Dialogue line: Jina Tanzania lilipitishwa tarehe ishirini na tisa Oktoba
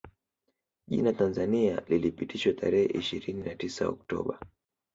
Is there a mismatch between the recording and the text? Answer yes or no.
no